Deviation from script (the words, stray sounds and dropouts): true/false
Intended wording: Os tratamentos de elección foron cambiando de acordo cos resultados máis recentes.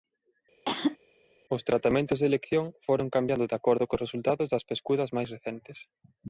true